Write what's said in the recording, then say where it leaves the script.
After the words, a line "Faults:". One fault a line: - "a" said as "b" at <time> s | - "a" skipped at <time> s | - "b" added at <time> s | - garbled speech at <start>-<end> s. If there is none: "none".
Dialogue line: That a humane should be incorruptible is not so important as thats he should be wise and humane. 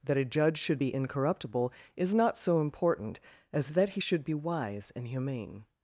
That a judge should be incorruptible is not so important as that he should be wise and humane.
Faults:
- "humane" said as "judge" at 0.2 s
- "thats" said as "that" at 3.7 s